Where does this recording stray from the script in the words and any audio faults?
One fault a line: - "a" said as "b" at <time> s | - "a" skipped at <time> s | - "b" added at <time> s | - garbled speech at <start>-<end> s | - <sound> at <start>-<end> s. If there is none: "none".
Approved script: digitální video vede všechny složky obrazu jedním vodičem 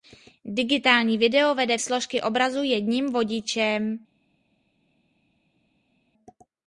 - "všechny" skipped at 1.8 s